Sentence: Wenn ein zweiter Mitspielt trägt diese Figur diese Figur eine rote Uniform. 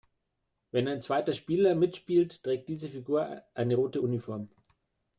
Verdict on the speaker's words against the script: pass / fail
fail